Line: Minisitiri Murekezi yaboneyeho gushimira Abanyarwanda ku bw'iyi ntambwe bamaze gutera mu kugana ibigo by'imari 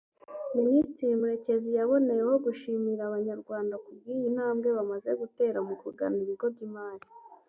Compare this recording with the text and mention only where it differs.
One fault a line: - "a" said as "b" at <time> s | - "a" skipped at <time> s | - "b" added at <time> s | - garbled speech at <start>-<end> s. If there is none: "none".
none